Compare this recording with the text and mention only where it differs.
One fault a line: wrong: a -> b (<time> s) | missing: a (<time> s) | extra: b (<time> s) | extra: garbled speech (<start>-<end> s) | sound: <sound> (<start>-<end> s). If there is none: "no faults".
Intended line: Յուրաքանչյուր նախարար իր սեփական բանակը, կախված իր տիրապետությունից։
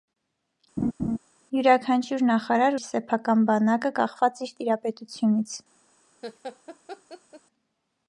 sound: laugh (0.8-1.2 s)
sound: laugh (6.2-7.4 s)